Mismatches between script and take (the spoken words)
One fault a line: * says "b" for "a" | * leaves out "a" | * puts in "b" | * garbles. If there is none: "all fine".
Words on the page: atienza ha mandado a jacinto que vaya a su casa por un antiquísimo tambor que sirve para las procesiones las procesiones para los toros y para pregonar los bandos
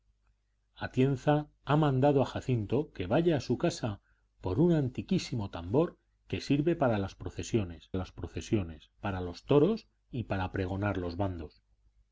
all fine